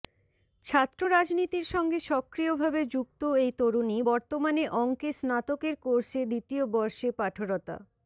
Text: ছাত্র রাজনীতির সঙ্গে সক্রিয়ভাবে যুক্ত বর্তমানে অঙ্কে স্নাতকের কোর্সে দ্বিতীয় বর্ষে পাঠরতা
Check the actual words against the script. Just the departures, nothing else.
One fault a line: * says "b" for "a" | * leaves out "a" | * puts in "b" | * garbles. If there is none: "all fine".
* puts in "এই তরুণী"